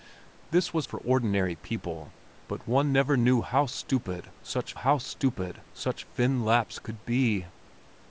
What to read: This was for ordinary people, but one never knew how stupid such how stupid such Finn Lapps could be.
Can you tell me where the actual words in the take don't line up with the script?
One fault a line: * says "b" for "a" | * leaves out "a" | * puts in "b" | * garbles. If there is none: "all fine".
all fine